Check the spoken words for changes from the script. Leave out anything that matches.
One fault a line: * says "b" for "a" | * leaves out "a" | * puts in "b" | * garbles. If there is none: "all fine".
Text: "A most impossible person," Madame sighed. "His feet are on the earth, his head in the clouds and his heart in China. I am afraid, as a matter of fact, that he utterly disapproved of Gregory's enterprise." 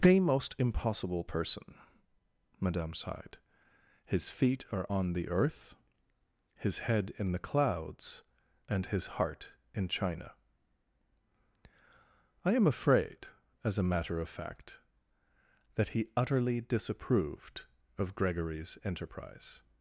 * says "The" for "A"